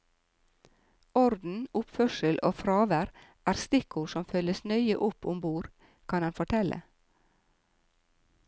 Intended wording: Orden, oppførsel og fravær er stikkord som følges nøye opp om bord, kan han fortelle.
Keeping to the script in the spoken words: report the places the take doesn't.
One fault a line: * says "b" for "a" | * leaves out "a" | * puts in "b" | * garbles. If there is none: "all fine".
all fine